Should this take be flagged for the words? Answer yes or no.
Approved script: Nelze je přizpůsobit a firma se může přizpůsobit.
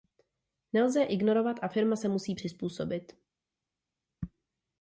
yes